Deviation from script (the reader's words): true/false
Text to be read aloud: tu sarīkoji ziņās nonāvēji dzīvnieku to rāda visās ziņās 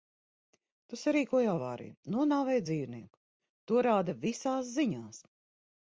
true